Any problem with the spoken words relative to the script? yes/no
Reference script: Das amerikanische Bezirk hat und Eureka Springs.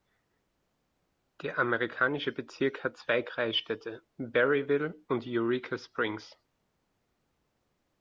yes